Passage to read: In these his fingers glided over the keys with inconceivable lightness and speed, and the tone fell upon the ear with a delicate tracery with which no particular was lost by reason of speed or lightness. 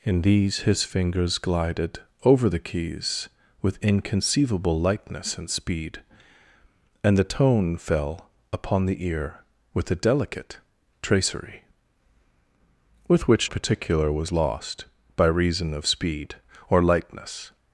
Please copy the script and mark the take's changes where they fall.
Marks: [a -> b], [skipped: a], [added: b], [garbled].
In these his fingers glided over the keys with inconceivable lightness and speed, and the tone fell upon the ear with a delicate tracery with which [skipped: no] particular was lost by reason of speed or lightness.